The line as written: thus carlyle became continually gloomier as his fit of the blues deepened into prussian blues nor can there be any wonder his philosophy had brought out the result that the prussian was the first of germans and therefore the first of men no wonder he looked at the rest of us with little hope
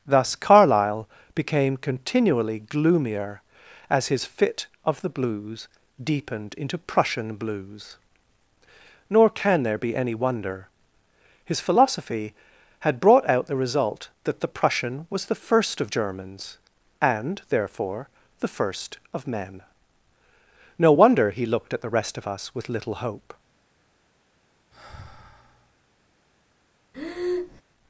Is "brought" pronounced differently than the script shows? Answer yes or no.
no